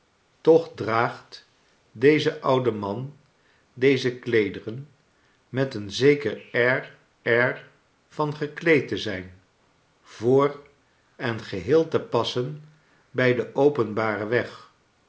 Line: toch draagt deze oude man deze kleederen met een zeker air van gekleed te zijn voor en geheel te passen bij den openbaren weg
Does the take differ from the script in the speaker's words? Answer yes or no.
yes